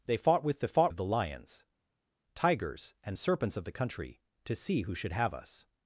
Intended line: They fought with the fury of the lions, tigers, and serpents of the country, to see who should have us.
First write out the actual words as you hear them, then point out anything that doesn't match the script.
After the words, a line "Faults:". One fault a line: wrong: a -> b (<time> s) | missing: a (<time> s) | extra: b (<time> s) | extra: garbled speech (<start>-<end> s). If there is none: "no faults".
They fought with the fought of the lions, tigers, and serpents of the country, to see who should have us.
Faults:
wrong: fury -> fought (0.7 s)